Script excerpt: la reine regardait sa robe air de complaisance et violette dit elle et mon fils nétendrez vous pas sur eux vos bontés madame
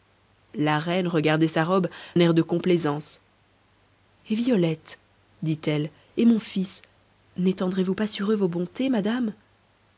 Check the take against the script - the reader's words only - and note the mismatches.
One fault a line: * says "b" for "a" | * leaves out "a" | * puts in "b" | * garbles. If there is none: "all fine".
all fine